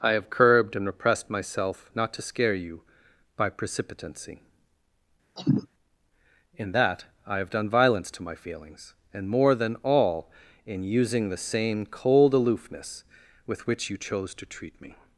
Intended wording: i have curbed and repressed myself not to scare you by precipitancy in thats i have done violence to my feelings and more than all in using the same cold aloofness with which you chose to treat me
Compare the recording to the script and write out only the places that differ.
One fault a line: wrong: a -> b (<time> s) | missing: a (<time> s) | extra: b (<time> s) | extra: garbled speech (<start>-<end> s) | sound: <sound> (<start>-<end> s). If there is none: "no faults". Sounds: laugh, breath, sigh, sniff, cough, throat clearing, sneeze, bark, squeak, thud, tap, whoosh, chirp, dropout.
sound: cough (5.4-5.7 s)
wrong: thats -> that (6.7 s)